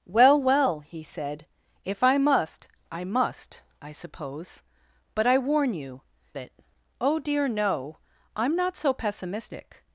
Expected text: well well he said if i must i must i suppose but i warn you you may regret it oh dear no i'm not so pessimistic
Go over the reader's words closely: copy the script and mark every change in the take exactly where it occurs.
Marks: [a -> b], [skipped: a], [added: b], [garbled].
well well he said if i must i must i suppose but i warn you [skipped: you may regret] it oh dear no i'm not so pessimistic